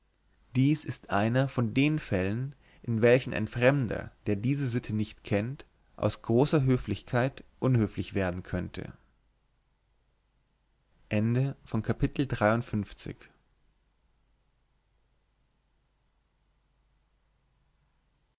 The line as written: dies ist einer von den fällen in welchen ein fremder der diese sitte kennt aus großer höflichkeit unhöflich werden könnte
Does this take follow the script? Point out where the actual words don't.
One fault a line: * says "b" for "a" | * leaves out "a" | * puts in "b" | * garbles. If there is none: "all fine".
* puts in "nicht"